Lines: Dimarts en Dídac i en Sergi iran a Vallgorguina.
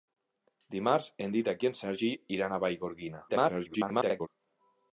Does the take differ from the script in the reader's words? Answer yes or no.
yes